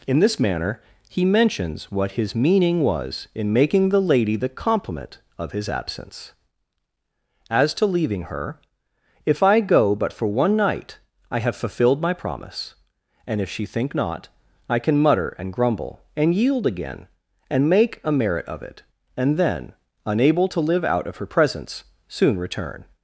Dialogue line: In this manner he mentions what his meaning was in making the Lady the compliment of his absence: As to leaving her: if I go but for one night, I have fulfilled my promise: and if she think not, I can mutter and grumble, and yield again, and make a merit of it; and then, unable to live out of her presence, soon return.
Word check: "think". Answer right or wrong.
right